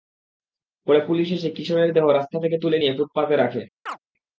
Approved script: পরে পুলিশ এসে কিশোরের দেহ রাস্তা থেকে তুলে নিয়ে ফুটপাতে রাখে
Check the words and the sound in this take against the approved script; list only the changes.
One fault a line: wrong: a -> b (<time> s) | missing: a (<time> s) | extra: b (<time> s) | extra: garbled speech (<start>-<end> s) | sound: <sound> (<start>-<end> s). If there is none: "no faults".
sound: chirp (3.9-4.0 s)